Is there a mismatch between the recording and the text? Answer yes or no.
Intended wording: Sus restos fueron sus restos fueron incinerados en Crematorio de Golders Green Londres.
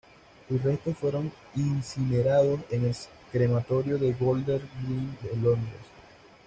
yes